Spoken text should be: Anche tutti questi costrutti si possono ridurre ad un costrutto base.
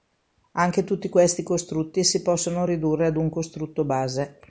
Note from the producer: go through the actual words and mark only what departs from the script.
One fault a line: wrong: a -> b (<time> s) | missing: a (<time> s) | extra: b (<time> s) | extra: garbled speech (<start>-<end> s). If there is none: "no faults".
no faults